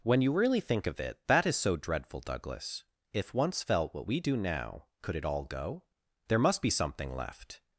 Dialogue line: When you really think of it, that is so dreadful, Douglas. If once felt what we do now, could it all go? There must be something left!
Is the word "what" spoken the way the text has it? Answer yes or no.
yes